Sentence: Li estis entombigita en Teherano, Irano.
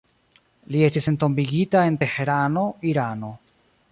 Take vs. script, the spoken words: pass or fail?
pass